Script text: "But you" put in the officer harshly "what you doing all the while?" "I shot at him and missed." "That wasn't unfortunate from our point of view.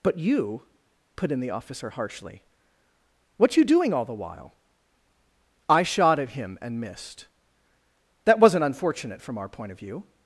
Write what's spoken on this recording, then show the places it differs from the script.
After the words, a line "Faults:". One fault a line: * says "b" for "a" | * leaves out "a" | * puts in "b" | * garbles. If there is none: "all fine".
"But you" put in the officer harshly "what you doing all the while?" "I shot at him and missed." "That wasn't unfortunate from our point of view.
Faults:
all fine